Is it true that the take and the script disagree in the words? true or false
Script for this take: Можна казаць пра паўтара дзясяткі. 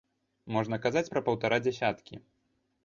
false